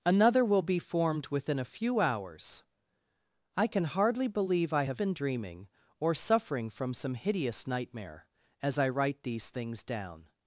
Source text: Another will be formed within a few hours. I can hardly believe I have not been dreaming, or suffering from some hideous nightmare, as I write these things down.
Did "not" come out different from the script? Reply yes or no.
yes